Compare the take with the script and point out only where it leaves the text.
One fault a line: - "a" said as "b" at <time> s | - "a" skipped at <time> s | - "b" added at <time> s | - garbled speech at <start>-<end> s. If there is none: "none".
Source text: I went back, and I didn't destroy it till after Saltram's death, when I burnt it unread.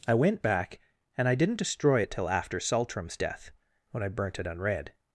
none